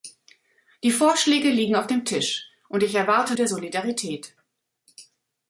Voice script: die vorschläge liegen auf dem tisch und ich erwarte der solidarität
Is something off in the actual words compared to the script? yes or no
no